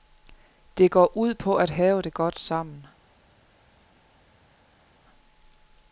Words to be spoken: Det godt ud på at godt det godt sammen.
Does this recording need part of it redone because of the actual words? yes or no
yes